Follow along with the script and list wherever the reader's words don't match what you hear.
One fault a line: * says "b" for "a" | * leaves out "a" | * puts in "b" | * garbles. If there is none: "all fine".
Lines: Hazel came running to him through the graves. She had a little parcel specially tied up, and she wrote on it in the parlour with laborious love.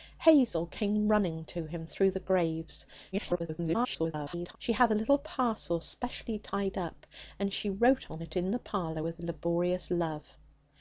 * garbles